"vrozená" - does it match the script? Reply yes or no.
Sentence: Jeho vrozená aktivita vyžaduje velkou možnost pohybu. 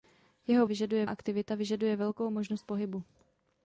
no